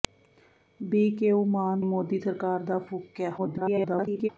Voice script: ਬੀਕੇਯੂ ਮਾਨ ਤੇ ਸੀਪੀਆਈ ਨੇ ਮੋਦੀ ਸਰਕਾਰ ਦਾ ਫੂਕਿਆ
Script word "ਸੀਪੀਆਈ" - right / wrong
wrong